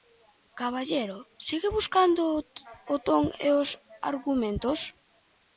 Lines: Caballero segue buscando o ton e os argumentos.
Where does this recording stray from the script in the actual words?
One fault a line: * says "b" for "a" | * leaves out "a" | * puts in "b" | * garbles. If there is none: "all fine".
all fine